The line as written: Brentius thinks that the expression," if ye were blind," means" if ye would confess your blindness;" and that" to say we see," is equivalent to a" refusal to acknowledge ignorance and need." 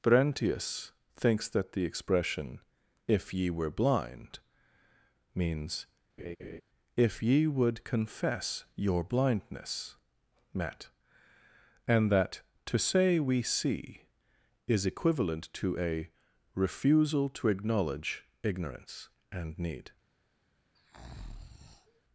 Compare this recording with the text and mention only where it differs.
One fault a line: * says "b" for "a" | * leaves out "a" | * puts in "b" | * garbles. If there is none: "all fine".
* puts in "met"